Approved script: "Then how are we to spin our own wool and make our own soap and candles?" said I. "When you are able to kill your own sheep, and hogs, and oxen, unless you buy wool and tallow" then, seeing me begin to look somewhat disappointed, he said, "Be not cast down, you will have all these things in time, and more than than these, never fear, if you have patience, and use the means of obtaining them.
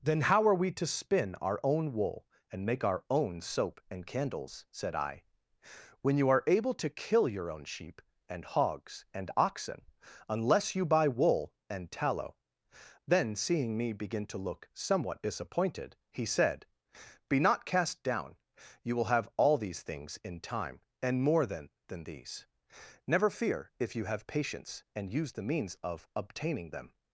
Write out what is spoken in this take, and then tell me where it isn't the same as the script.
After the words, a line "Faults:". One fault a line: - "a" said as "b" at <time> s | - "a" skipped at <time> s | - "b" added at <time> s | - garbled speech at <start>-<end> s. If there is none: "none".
"Then how are we to spin our own wool and make our own soap and candles?" said I. "When you are able to kill your own sheep, and hogs, and oxen, unless you buy wool and tallow" then, seeing me begin to look somewhat disappointed, he said, "Be not cast down, you will have all these things in time, and more than than these, never fear, if you have patience, and use the means of obtaining them.
Faults:
none